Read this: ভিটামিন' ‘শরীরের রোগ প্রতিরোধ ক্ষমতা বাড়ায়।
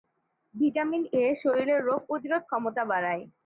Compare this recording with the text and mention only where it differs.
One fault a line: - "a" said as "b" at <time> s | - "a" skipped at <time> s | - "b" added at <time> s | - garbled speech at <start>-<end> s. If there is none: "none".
- "এ" added at 1.1 s